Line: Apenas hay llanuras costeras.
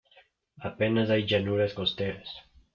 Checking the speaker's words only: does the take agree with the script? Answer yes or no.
yes